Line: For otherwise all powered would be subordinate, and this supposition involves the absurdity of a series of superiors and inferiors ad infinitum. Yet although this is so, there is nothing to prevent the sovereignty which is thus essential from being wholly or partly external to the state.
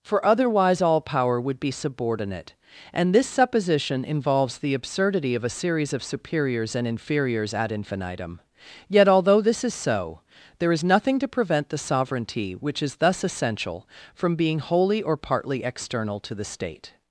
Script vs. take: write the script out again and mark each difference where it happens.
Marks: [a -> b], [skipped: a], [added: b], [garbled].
For otherwise all [powered -> power] would be subordinate, and this supposition involves the absurdity of a series of superiors and inferiors ad infinitum. Yet although this is so, there is nothing to prevent the sovereignty which is thus essential from being wholly or partly external to the state.